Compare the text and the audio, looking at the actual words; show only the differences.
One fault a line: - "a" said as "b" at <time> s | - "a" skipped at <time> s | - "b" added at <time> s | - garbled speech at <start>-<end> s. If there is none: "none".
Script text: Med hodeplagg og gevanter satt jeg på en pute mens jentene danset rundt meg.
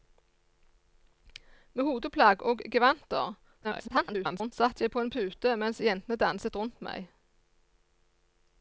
- garbled speech at 3.6-4.5 s